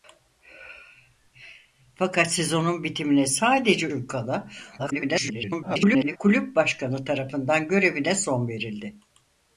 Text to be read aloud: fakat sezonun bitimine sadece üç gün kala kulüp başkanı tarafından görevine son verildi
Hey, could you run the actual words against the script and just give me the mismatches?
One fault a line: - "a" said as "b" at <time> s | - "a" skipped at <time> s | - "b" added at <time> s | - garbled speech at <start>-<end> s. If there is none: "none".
- "üç" skipped at 3.9 s
- garbled speech at 4.8-6.2 s